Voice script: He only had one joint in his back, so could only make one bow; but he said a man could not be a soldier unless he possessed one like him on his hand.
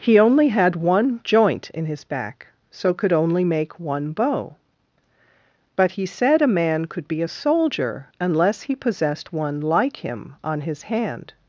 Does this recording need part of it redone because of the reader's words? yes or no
yes